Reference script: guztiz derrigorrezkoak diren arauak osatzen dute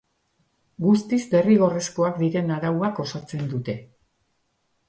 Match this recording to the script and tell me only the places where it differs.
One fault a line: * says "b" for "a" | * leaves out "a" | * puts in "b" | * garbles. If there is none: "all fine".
all fine